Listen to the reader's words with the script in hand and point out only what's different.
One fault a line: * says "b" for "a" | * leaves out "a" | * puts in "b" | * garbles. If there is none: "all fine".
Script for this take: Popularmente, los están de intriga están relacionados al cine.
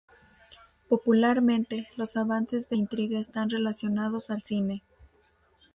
* says "avances" for "están"